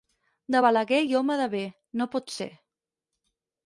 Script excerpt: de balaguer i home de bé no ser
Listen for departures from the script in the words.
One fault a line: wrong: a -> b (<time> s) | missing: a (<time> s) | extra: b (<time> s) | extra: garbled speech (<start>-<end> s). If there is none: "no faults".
extra: pot (2.2 s)